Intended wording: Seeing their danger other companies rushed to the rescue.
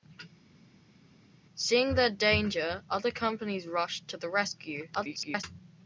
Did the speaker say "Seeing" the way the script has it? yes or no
yes